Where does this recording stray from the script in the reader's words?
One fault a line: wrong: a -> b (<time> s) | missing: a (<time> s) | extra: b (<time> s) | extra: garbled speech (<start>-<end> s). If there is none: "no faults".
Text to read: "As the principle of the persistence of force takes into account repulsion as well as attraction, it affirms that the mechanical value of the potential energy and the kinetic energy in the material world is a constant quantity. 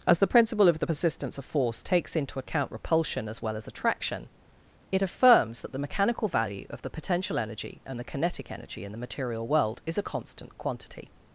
no faults